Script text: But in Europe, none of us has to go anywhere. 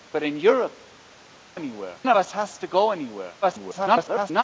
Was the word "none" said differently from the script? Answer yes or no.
yes